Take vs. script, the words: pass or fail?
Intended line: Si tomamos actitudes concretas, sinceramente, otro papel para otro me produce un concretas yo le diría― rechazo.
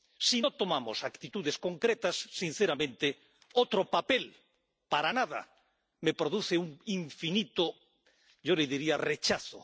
fail